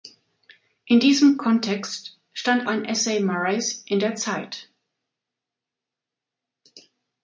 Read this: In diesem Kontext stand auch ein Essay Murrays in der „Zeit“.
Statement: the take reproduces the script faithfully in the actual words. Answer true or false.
false